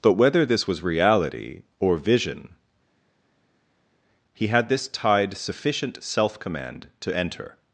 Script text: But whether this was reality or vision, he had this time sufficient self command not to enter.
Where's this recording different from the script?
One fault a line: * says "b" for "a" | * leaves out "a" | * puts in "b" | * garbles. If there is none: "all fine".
* says "tide" for "time"
* leaves out "not"